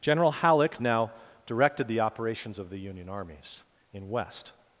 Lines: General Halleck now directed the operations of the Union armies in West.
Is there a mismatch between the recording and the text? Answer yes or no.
no